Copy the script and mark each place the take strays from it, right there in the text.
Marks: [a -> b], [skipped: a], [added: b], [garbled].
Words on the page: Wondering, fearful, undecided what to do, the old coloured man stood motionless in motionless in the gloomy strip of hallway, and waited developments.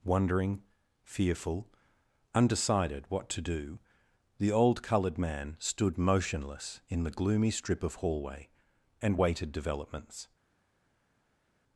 Wondering, fearful, undecided what to do, the old coloured man stood motionless in [skipped: motionless in] the gloomy strip of hallway, and waited developments.